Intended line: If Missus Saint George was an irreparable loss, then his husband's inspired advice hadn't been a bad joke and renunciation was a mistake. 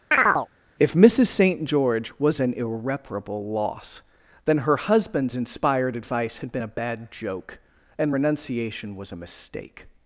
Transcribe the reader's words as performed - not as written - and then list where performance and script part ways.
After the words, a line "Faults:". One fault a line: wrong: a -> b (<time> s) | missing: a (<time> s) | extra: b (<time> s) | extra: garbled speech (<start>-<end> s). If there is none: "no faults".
If Missus Saint George was an irreparable loss, then her husband's inspired advice had been a bad joke and renunciation was a mistake.
Faults:
wrong: his -> her (4.6 s)
wrong: hadn't -> had (6.4 s)